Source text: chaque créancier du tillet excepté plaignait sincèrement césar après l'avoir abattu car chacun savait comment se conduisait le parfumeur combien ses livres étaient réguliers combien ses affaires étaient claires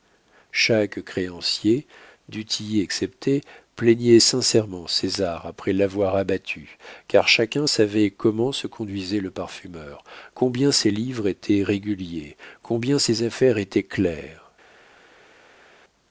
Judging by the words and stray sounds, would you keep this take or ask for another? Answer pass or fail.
pass